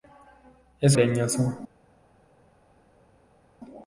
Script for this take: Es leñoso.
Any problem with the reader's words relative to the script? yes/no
no